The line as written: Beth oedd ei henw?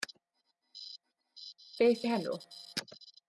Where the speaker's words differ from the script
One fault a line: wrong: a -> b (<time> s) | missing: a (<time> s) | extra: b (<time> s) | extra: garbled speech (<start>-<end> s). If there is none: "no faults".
missing: oedd (2.0 s)